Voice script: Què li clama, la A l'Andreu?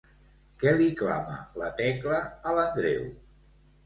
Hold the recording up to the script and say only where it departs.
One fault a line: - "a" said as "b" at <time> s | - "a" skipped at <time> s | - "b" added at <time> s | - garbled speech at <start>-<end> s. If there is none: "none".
- "Tecla" added at 1.8 s